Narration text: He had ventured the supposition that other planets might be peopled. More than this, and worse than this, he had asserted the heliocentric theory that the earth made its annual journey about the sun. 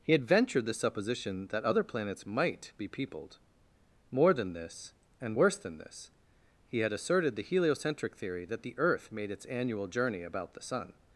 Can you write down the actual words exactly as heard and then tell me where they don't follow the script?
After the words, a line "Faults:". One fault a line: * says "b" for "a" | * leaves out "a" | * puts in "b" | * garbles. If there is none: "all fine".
He had ventured the supposition that other planets might be peopled. More than this, and worse than this, he had asserted the heliocentric theory that the earth made its annual journey about the sun.
Faults:
all fine